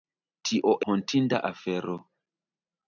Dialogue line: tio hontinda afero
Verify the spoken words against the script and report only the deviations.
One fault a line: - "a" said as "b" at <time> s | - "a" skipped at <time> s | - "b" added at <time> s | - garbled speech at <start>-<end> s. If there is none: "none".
none